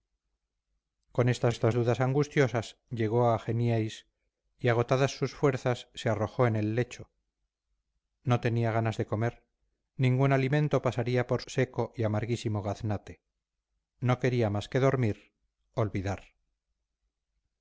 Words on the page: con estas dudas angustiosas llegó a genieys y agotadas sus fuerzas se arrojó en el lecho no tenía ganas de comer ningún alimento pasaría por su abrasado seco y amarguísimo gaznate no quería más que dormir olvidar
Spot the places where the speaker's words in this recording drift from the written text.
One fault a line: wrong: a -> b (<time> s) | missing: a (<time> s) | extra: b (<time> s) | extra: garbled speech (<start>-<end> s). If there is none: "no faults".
extra: estas (1.5 s)
missing: su abrasado (11.4 s)